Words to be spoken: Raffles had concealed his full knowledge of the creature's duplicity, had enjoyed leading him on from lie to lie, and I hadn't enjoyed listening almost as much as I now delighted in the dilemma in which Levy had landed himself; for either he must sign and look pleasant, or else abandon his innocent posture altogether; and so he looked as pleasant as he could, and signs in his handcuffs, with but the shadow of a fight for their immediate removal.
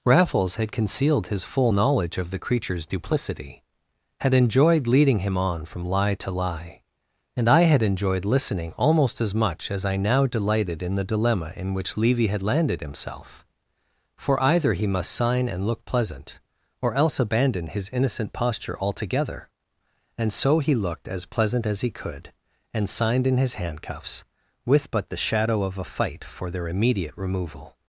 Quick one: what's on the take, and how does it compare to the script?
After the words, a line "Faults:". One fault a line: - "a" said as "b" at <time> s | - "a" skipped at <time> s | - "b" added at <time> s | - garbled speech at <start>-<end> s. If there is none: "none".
Raffles had concealed his full knowledge of the creature's duplicity, had enjoyed leading him on from lie to lie, and I had enjoyed listening almost as much as I now delighted in the dilemma in which Levy had landed himself; for either he must sign and look pleasant, or else abandon his innocent posture altogether; and so he looked as pleasant as he could, and signed in his handcuffs, with but the shadow of a fight for their immediate removal.
Faults:
- "hadn't" said as "had" at 7.6 s
- "signs" said as "signed" at 22.9 s